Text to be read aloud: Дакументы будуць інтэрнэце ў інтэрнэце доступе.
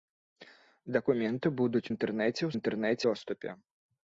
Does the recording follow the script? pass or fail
pass